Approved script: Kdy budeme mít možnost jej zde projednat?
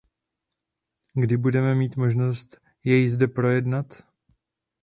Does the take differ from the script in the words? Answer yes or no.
no